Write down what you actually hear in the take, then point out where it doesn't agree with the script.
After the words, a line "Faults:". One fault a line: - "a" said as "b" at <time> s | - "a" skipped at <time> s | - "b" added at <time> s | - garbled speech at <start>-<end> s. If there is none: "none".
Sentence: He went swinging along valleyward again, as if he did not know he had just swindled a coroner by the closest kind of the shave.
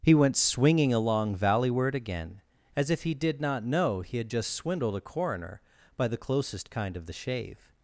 He went swinging along valleyward again, as if he did not know he had just swindled a coroner by the closest kind of the shave.
Faults:
none